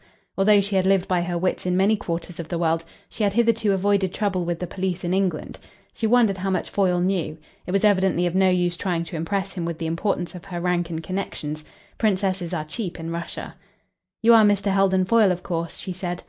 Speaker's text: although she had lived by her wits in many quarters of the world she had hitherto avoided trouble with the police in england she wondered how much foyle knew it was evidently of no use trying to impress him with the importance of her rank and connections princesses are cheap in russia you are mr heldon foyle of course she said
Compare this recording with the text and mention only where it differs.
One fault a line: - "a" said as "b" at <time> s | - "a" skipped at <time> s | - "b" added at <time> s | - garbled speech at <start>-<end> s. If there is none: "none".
none